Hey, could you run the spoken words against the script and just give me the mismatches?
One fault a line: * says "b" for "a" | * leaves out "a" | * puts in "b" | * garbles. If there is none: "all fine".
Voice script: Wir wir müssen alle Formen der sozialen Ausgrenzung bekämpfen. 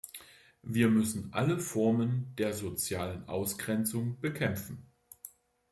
* leaves out "wir"